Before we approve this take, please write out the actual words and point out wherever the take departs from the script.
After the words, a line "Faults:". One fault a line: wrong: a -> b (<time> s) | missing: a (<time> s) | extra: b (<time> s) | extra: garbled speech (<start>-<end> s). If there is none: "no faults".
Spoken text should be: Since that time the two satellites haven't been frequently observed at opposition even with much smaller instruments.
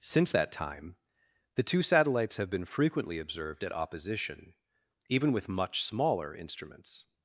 Since that time the two satellites have been frequently observed at opposition even with much smaller instruments.
Faults:
wrong: haven't -> have (2.4 s)